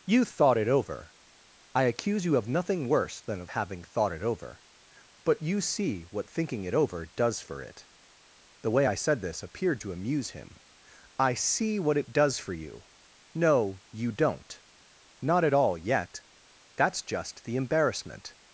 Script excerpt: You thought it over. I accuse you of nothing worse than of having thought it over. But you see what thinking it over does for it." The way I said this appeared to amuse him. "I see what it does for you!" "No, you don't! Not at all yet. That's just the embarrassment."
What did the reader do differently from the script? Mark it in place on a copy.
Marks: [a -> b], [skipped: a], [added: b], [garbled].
You thought it over. I accuse you of nothing worse than of having thought it over. But you see what thinking it over does for it." The way I said this appeared to amuse him. "I see what it does for you!" "No, you don't! Not at all yet. That's just the embarrassment."